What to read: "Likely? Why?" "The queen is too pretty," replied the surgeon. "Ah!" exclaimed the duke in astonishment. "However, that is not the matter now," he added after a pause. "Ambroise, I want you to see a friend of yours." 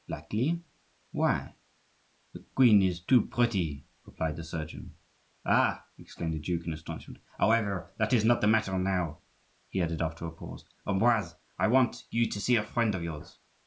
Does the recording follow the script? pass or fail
pass